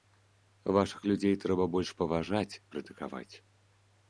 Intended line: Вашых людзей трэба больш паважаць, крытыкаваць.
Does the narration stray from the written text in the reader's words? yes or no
no